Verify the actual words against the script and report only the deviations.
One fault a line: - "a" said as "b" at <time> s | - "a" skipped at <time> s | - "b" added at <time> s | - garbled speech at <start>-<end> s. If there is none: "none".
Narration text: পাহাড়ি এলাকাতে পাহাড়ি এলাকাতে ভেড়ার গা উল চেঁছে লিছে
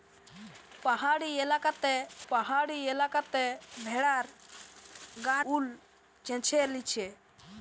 none